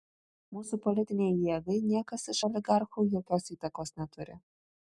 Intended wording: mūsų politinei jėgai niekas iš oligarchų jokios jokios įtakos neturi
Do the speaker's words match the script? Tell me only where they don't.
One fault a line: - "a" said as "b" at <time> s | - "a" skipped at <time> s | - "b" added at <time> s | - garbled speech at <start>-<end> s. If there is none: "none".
- "jokios" skipped at 3.5 s